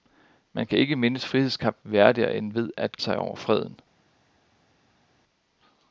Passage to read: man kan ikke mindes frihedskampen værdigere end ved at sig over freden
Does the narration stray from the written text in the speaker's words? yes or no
no